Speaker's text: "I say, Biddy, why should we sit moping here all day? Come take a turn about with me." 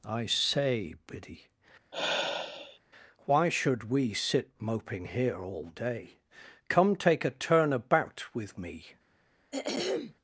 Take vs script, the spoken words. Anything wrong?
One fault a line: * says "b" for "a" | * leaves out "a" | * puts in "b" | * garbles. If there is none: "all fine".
all fine